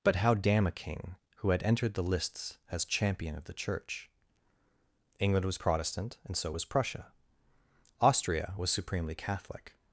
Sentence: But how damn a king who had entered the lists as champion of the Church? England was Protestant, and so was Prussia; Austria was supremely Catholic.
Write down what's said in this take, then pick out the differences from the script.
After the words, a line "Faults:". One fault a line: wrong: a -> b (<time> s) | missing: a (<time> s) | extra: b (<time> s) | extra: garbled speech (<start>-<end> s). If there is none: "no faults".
But how damn a king who had entered the lists as champion of the Church? England was Protestant, and so was Prussia; Austria was supremely Catholic.
Faults:
no faults